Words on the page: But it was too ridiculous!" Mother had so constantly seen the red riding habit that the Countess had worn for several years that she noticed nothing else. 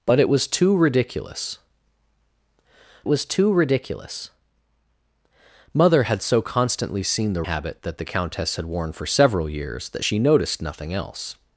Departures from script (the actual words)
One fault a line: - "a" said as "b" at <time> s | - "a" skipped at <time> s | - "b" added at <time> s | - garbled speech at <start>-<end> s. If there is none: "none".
- "was too ridiculous" added at 3.1 s
- "red riding" skipped at 7.4 s